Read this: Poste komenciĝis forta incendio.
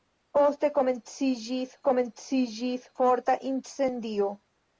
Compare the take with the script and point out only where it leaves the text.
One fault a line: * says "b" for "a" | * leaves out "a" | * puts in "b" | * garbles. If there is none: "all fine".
* puts in "komenciĝis"